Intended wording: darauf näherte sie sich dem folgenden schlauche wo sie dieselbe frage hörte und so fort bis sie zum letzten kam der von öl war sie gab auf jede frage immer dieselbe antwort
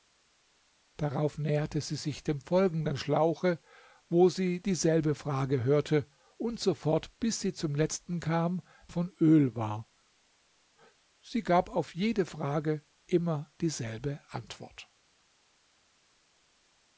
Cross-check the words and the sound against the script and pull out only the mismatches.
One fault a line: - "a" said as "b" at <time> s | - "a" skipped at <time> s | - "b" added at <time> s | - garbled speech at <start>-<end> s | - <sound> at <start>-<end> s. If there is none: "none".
- "der" skipped at 8.6 s